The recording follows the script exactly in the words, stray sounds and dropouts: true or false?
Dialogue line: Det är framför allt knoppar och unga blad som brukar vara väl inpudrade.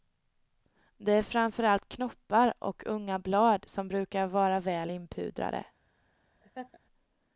false